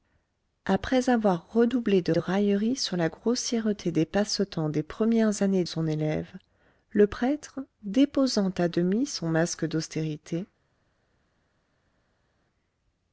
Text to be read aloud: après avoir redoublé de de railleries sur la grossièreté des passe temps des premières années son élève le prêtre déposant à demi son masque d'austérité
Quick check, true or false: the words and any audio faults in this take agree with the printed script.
true